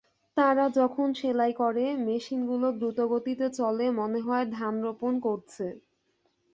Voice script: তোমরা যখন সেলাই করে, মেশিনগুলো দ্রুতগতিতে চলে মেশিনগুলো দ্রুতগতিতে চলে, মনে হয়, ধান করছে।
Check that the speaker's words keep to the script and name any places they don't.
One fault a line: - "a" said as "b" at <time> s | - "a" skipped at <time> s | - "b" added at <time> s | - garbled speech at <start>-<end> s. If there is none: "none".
- "তোমরা" said as "তারা" at 0.4 s
- "মেশিনগুলো দ্রুতগতিতে চলে" skipped at 3.9 s
- "রোপণ" added at 4.8 s